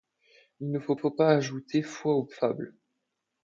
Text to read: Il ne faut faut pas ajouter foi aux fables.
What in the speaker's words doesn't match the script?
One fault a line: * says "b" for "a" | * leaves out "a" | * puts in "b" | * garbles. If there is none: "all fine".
all fine